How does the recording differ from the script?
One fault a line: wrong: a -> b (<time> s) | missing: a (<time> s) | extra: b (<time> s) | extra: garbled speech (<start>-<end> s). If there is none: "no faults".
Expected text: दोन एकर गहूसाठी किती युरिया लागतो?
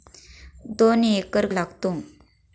missing: गहूसाठी किती युरिया (1.4 s)